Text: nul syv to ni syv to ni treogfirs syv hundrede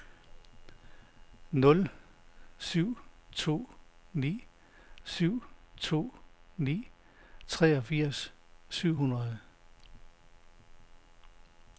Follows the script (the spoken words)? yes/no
yes